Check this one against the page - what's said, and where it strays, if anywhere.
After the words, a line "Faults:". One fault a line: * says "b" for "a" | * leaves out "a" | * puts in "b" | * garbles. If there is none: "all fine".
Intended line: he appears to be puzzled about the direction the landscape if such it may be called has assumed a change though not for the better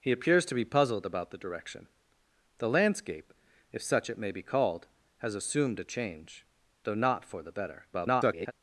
he appears to be puzzled about the direction the landscape if such it may be called has assumed a change though not for the better [garbled]
Faults:
* garbles